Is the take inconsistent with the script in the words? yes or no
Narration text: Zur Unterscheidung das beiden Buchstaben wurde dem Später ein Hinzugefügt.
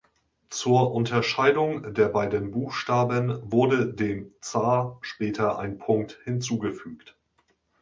yes